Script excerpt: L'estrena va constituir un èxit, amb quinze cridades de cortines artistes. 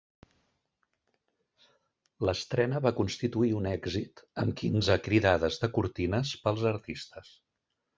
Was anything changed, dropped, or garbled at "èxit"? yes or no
no